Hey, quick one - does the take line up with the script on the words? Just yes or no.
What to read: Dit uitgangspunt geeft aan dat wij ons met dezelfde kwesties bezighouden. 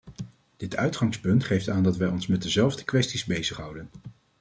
yes